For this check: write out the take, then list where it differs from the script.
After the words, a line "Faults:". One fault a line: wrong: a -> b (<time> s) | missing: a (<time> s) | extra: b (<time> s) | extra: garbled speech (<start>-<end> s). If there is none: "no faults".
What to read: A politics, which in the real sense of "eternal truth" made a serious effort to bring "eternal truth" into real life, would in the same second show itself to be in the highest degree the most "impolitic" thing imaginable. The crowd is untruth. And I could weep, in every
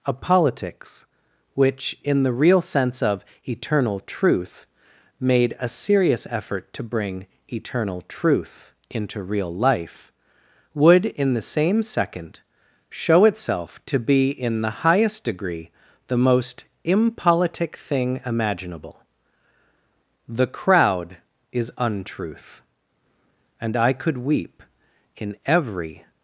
A politics, which in the real sense of "eternal truth" made a serious effort to bring "eternal truth" into real life, would in the same second show itself to be in the highest degree the most "impolitic" thing imaginable. The crowd is untruth. And I could weep, in every
Faults:
no faults